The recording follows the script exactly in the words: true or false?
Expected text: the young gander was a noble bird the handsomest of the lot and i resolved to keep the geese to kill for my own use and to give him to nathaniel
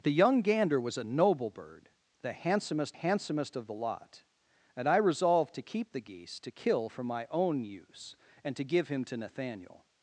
false